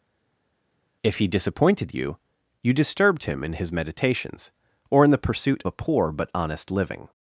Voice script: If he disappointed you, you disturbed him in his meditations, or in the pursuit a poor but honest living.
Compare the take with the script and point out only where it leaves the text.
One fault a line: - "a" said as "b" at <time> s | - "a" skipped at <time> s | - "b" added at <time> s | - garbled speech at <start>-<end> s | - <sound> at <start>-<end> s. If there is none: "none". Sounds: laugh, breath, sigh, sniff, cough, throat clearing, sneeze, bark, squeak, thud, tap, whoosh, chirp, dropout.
none